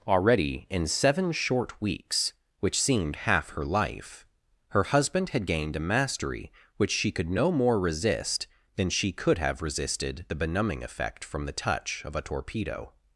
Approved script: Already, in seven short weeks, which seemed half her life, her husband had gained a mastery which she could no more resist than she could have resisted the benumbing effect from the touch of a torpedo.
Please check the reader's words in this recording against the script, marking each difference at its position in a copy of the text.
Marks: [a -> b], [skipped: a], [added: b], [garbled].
Already, in seven short weeks, which seemed half her life, her husband had gained a mastery which she could no more resist than she could have resisted the benumbing effect from the touch of a torpedo.